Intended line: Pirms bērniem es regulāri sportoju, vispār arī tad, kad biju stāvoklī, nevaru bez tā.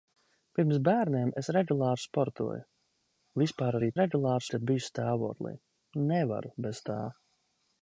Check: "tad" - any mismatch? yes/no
yes